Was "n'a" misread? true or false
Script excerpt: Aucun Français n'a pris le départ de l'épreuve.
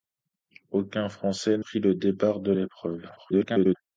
true